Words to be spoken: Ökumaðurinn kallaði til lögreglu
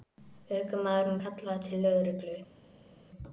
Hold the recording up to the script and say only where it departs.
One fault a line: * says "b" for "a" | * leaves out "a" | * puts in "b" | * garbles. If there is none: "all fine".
all fine